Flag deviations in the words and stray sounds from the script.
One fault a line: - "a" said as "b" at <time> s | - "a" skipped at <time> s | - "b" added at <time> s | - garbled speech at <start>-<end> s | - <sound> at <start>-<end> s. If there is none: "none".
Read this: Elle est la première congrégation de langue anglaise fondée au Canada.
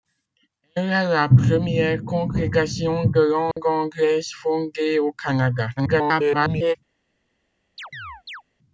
- dropout at 3.5-3.6 s
- garbled speech at 5.8-6.8 s
- chirp at 7.8-8.4 s